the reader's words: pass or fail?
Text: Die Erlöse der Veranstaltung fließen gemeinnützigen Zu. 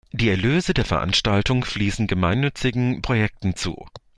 fail